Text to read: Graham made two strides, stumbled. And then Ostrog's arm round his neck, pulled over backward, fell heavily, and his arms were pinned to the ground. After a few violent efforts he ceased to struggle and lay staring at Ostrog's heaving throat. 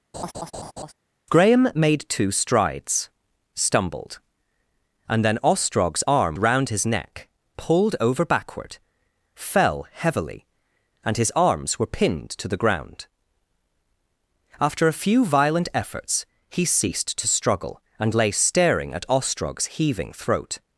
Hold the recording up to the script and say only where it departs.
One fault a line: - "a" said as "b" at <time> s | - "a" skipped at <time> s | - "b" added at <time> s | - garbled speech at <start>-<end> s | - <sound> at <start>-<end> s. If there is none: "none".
- laugh at 0.1-0.9 s